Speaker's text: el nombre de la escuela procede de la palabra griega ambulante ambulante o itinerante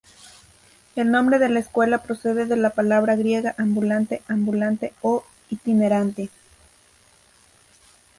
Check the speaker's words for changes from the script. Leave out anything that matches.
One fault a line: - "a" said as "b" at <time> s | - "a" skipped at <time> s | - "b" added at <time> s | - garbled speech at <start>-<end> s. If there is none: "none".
none